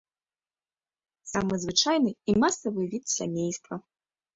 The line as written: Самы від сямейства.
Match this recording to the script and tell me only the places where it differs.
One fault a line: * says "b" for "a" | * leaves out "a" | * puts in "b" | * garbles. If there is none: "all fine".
* puts in "звычайны і масавы"